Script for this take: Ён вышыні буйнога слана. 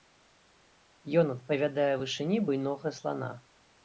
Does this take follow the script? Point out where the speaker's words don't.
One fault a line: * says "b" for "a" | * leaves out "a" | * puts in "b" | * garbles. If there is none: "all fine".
* puts in "адпавядае"